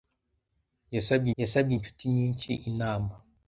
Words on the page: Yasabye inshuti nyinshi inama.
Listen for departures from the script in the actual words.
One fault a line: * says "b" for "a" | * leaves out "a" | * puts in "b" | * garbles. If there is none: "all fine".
* puts in "yasabye"